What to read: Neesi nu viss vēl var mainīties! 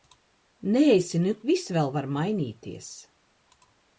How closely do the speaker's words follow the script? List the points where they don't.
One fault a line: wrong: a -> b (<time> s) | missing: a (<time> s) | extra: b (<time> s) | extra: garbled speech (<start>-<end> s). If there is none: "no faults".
no faults